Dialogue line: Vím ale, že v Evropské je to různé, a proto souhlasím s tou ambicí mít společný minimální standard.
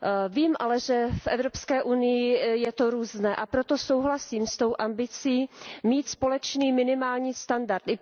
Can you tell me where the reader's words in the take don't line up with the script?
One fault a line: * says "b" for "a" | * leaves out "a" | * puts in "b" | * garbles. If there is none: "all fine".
* puts in "unii"